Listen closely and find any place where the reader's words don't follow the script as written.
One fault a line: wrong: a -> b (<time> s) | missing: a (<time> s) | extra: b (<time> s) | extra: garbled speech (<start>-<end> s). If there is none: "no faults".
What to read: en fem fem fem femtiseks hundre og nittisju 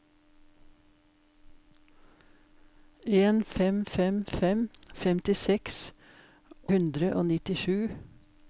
no faults